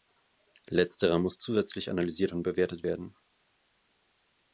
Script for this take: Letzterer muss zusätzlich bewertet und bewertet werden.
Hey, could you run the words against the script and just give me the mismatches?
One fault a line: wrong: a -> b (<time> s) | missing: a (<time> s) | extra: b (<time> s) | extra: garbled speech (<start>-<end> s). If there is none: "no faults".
wrong: bewertet -> analysiert (1.9 s)